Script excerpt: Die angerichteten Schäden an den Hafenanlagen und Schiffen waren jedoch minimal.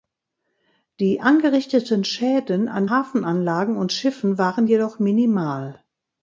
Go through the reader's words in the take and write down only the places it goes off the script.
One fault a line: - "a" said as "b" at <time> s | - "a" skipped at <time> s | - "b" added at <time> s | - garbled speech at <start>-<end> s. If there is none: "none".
- "den" skipped at 2.9 s